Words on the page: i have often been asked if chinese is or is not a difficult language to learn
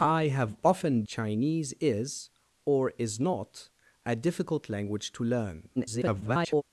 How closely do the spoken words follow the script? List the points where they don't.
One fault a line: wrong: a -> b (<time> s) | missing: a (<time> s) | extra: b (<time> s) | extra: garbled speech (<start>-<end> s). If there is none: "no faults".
missing: been asked if (1.0 s)
extra: garbled speech (5.8-6.6 s)